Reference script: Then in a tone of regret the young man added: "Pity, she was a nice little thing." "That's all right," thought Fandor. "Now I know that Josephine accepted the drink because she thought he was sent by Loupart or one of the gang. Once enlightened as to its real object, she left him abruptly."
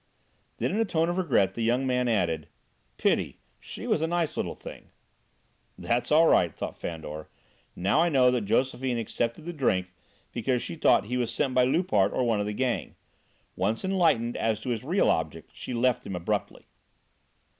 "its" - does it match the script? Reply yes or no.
no